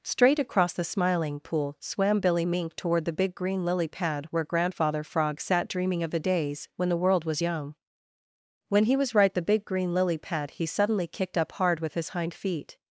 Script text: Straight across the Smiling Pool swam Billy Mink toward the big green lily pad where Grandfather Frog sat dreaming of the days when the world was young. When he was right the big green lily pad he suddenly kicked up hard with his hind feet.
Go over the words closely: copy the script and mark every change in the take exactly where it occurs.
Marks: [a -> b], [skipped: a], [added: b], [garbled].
Straight across the Smiling Pool swam Billy Mink toward the big green lily pad where Grandfather Frog sat dreaming of the days when the world was young. When he was right the big green lily pad he suddenly kicked up hard with his hind feet.